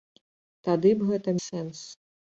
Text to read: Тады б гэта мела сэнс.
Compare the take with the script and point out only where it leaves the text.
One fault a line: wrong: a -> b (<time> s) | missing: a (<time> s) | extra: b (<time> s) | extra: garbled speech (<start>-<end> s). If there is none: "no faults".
missing: мела (1.4 s)